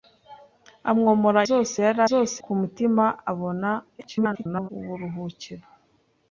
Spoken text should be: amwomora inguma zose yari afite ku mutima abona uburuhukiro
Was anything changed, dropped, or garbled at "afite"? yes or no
yes